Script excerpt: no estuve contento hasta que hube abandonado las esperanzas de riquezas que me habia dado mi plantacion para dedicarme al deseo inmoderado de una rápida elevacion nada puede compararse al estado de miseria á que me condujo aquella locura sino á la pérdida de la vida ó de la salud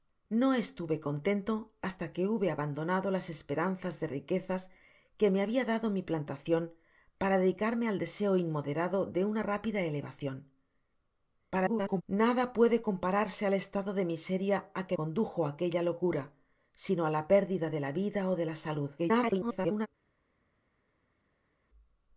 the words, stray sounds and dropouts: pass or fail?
fail